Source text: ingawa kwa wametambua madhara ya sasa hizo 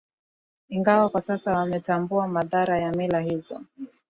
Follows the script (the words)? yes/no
no